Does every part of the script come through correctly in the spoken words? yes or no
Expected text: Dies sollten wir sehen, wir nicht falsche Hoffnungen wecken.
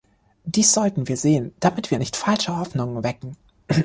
no